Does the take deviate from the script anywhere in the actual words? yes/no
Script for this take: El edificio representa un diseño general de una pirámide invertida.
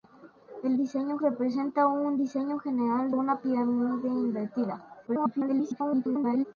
yes